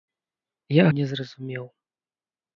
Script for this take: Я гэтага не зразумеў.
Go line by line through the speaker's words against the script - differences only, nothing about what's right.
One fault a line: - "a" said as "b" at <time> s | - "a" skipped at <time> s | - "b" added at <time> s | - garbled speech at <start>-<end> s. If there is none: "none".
- "гэтага" skipped at 0.8 s